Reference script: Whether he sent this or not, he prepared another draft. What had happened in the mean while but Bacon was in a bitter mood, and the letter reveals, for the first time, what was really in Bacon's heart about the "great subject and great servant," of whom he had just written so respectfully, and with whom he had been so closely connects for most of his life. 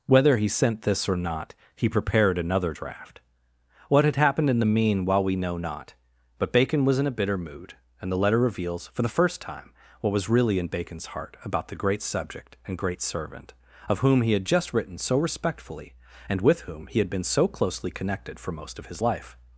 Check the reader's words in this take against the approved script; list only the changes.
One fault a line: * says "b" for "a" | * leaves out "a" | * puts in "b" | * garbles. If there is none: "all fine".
* puts in "we know not"
* says "connected" for "connects"